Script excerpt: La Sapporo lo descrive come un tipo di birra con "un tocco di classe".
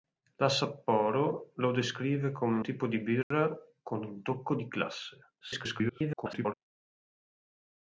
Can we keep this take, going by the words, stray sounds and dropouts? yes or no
no